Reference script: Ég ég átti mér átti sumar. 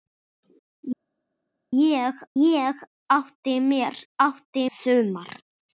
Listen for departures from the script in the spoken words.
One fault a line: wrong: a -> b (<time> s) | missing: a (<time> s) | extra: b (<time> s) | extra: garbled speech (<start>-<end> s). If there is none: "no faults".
no faults